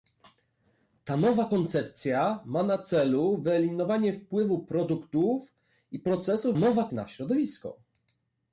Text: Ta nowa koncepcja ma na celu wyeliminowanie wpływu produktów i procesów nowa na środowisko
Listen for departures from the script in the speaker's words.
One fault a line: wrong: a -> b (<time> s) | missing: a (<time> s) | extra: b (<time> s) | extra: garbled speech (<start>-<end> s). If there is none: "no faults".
no faults